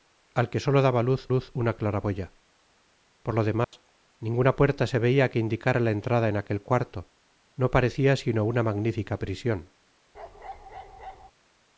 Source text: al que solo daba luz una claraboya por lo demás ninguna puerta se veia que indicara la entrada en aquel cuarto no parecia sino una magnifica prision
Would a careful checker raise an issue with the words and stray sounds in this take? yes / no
yes